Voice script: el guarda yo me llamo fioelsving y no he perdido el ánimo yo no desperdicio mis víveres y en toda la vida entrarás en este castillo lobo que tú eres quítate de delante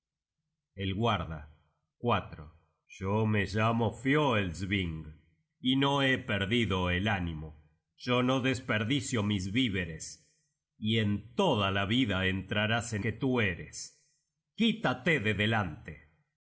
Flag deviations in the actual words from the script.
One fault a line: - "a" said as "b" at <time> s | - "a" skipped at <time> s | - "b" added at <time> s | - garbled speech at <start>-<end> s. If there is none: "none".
- "este castillo lobo" skipped at 13.1 s